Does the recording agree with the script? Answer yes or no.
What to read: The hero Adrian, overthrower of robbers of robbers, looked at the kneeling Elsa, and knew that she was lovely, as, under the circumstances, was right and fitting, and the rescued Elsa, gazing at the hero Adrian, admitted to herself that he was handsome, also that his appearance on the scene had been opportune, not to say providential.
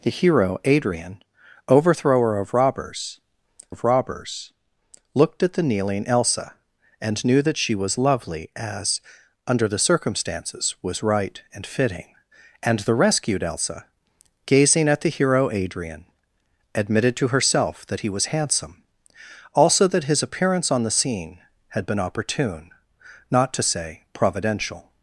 yes